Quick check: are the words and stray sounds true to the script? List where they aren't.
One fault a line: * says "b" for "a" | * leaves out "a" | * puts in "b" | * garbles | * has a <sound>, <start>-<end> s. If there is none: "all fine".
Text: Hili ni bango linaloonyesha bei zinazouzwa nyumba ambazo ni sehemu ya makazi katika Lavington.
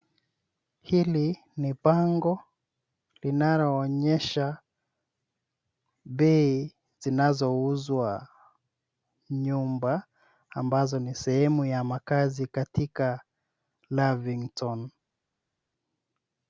all fine